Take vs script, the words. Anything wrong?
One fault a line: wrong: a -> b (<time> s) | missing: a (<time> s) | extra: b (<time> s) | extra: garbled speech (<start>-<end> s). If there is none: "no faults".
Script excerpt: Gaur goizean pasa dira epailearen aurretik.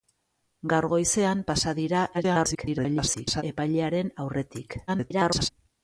extra: garbled speech (2.1-3.4 s)
extra: garbled speech (4.9-5.5 s)